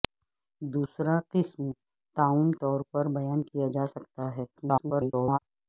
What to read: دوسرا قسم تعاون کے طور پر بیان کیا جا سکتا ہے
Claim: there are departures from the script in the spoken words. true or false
true